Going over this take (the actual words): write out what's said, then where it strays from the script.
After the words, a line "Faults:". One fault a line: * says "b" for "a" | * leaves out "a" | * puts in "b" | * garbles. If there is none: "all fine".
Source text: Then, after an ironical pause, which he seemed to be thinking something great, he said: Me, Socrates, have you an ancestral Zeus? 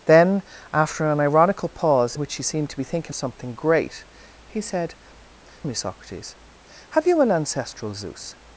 Then, after an ironical pause, which he seemed to be thinking something great, he said: Me, Socrates, have you an ancestral Zeus?
Faults:
all fine